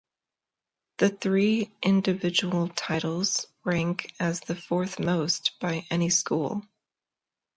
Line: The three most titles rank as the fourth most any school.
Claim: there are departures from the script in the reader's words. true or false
true